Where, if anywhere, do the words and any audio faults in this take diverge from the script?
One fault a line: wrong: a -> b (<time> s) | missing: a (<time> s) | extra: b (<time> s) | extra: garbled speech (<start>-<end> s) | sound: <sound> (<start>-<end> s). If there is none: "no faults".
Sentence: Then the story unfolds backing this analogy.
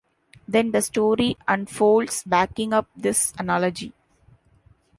extra: up (2.7 s)